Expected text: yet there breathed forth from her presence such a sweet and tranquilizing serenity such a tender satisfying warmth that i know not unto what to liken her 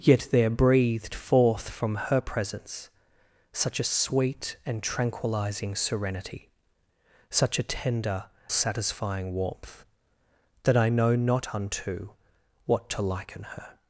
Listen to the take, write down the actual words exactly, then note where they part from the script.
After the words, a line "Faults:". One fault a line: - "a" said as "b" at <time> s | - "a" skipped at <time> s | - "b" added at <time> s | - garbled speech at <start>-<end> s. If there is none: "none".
yet there breathed forth from her presence such a sweet and tranquilizing serenity such a tender satisfying warmth that i know not unto what to liken her
Faults:
none